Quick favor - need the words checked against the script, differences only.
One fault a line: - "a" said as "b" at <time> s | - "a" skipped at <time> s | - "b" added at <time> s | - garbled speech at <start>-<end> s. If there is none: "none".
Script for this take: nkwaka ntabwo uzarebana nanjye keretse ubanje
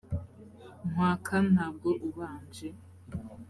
- "uzarebana nanjye keretse" skipped at 1.9 s